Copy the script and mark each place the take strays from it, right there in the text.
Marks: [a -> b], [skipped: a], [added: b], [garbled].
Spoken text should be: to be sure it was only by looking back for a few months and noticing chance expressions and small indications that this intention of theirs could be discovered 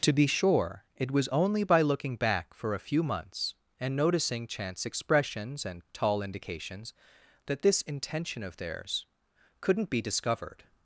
to be sure it was only by looking back for a few months and noticing chance expressions and [small -> tall] indications that this intention of theirs [could -> couldn't] be discovered